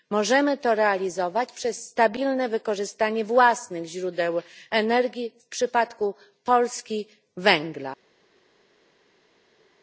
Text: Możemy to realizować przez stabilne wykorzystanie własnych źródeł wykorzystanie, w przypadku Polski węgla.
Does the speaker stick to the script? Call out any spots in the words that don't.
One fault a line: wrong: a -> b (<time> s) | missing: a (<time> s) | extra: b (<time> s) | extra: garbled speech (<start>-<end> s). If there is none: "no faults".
wrong: wykorzystanie -> energii (4.7 s)